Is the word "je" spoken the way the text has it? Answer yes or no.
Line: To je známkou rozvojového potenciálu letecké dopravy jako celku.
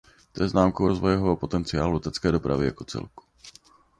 yes